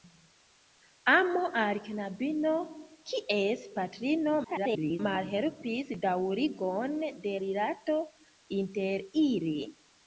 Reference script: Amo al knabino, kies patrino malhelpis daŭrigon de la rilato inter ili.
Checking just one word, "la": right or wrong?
wrong